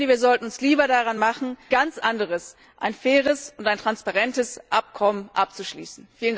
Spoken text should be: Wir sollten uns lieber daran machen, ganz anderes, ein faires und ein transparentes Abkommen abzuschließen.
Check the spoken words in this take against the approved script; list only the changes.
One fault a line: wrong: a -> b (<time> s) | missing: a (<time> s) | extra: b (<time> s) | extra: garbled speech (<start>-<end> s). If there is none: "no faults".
no faults